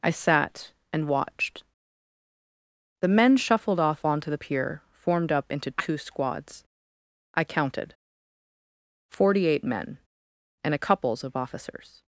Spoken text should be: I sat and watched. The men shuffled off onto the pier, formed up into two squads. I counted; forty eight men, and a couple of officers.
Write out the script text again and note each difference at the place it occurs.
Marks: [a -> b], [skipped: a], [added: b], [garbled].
I sat and watched. The men shuffled off onto the pier, formed up into two squads. I counted; forty eight men, and a [couple -> couples] of officers.